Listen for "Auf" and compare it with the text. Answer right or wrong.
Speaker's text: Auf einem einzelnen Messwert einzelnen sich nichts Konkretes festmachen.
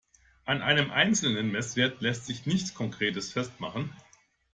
wrong